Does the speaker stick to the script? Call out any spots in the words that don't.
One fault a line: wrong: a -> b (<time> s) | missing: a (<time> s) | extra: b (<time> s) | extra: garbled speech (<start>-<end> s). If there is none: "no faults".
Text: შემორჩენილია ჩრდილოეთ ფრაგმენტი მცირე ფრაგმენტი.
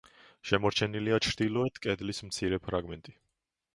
wrong: ფრაგმენტი -> კედლის (1.9 s)